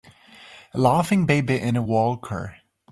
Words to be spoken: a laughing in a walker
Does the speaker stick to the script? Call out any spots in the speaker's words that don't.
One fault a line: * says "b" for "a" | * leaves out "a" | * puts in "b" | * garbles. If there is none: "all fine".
* puts in "baby"